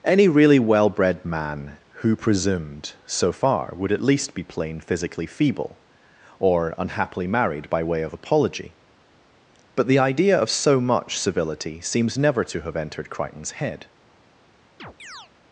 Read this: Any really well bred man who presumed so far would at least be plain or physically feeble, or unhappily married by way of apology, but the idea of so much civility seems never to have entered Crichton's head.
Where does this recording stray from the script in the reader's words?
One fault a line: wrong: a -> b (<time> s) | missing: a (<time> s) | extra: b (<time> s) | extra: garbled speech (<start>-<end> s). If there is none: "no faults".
missing: or (4.8 s)